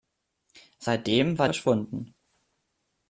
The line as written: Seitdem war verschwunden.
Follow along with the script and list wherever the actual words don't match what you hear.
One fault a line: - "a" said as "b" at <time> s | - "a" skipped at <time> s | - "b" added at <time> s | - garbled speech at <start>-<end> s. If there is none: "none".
none